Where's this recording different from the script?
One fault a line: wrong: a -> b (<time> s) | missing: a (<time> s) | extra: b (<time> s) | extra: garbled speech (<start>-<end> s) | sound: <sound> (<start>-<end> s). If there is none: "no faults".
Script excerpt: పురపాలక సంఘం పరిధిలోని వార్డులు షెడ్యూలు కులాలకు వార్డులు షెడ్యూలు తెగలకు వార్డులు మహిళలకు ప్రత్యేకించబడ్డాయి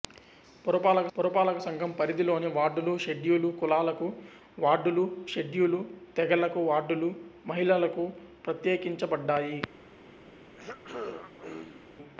extra: పురపాలక (1.2 s)
sound: throat clearing (10.5-11.9 s)